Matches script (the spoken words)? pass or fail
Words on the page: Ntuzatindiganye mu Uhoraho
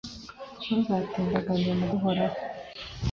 pass